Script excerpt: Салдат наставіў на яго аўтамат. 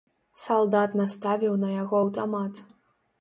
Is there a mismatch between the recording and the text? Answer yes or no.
no